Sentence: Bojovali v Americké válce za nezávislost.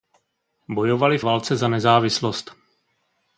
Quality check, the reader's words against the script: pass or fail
fail